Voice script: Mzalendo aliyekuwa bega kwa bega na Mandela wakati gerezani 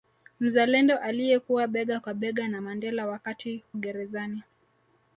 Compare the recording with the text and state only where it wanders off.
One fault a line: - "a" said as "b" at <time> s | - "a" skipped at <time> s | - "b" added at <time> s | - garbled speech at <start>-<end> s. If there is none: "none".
none